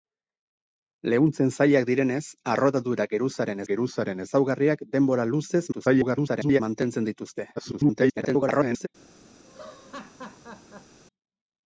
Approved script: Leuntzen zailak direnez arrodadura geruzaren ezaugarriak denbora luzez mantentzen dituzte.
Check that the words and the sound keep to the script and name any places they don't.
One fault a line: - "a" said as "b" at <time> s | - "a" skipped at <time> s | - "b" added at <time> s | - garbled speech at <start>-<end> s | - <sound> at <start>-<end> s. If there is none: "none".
- "geruzaren" added at 3.7 s
- garbled speech at 5.7-6.6 s
- garbled speech at 7.6-8.9 s
- laugh at 9.4-11.0 s